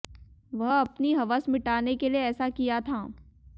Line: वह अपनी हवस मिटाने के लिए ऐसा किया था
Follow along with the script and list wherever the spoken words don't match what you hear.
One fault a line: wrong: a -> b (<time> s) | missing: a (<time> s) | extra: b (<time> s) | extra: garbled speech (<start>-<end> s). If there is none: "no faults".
no faults